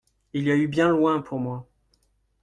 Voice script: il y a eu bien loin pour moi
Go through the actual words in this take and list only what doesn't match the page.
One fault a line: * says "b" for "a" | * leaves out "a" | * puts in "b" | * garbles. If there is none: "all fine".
all fine